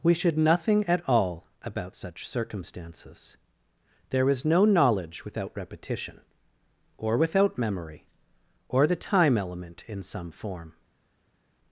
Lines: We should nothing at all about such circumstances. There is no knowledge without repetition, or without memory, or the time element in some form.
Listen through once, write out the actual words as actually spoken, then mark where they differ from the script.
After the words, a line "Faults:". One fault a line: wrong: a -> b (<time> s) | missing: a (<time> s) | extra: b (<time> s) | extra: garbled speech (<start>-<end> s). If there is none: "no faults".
We should nothing at all about such circumstances. There is no knowledge without repetition, or without memory, or the time element in some form.
Faults:
no faults